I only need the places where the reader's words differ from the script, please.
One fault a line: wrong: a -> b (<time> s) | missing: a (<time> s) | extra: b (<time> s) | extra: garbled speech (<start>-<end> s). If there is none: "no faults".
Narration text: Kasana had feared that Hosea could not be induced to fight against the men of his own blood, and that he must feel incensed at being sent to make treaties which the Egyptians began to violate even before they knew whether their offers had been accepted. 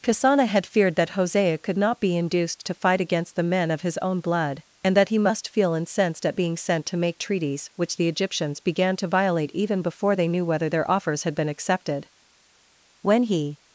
extra: When he (13.0 s)